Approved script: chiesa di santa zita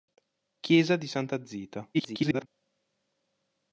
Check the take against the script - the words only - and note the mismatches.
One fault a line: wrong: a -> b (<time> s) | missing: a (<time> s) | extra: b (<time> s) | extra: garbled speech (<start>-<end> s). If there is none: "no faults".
extra: garbled speech (1.9-2.5 s)